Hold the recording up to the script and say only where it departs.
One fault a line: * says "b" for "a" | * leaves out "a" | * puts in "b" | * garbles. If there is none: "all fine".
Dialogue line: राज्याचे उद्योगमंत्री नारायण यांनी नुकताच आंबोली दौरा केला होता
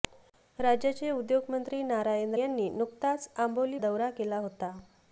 all fine